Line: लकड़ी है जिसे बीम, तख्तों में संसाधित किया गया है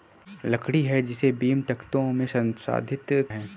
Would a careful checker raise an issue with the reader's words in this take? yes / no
yes